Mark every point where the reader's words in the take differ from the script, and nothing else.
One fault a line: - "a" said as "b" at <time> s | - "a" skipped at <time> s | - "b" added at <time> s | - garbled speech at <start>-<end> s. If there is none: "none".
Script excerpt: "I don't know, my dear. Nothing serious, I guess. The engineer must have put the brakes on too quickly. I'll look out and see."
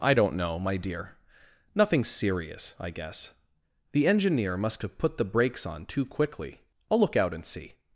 none